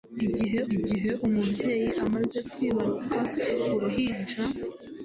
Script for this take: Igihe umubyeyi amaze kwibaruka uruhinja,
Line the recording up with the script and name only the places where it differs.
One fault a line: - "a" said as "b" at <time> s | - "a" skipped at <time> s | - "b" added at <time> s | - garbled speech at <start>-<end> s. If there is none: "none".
- "igihe" added at 0.7 s